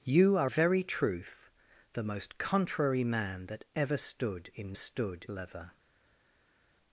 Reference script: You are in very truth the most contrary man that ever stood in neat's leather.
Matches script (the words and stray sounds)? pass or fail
fail